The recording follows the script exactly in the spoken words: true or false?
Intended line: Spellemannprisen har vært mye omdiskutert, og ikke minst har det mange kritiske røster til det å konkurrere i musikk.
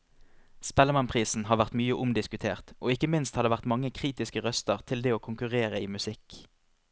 false